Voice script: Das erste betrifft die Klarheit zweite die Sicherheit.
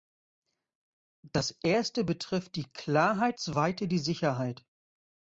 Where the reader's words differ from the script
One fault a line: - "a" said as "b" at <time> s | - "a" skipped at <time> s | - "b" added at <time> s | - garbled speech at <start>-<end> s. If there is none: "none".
none